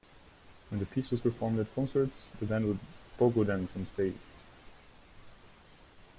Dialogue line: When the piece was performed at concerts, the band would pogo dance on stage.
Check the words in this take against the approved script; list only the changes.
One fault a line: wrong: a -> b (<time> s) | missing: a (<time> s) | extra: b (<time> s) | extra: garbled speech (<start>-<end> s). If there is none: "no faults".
no faults